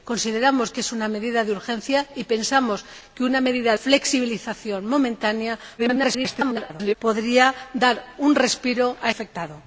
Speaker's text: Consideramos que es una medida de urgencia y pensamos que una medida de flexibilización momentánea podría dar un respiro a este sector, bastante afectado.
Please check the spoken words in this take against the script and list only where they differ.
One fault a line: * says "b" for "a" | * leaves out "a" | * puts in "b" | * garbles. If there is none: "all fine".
* leaves out "de"
* garbles
* leaves out "este sector bastante"